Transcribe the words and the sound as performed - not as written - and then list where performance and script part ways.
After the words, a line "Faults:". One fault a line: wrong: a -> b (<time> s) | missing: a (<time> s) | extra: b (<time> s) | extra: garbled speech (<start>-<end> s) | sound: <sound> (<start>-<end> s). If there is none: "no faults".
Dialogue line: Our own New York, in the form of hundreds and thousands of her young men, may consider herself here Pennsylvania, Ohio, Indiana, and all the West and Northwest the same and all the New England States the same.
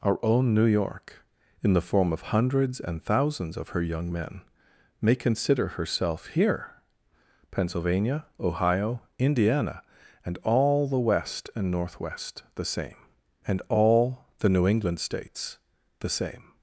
Our own New York, in the form of hundreds and thousands of her young men, may consider herself here Pennsylvania, Ohio, Indiana, and all the West and Northwest the same and all the New England States the same.
Faults:
no faults